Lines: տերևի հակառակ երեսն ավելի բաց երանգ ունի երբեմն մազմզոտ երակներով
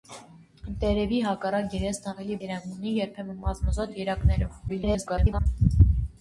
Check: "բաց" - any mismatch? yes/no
yes